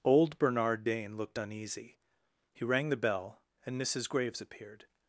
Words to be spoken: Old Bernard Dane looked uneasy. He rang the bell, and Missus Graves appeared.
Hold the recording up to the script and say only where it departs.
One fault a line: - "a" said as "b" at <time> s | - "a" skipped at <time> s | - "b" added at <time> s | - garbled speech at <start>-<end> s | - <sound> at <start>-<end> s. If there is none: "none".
none